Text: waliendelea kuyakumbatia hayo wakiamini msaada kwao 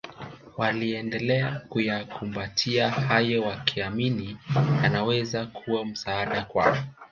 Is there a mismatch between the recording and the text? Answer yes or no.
yes